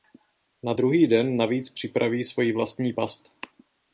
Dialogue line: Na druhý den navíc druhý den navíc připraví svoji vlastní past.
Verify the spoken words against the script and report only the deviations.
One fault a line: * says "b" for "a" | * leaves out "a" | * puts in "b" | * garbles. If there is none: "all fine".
* leaves out "druhý den navíc"